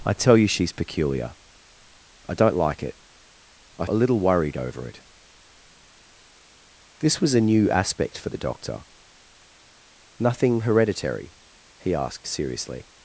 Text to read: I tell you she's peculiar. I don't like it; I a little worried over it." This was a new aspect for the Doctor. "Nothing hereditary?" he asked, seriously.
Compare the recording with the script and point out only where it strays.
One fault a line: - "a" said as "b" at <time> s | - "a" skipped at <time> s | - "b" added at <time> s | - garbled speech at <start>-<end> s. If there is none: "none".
none